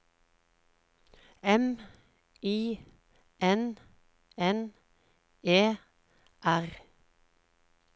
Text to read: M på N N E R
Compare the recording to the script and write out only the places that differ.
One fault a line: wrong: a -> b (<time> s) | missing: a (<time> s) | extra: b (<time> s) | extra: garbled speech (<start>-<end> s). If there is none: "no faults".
wrong: på -> I (2.4 s)